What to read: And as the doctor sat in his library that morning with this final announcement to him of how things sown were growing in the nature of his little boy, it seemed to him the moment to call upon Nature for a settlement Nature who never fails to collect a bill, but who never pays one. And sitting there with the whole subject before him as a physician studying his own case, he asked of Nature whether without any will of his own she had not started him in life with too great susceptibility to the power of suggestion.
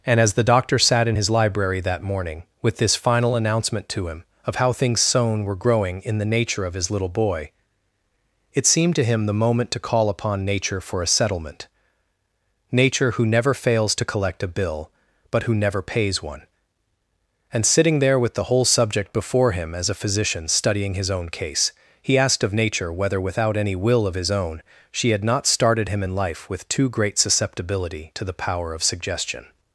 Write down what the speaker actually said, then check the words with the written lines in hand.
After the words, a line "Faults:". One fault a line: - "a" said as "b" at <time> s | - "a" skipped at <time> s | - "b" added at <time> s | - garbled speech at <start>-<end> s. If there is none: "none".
And as the doctor sat in his library that morning with this final announcement to him of how things sown were growing in the nature of his little boy, it seemed to him the moment to call upon Nature for a settlement Nature who never fails to collect a bill, but who never pays one. And sitting there with the whole subject before him as a physician studying his own case, he asked of Nature whether without any will of his own she had not started him in life with too great susceptibility to the power of suggestion.
Faults:
none